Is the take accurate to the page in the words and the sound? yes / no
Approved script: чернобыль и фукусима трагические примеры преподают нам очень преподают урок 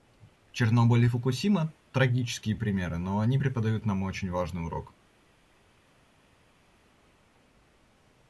no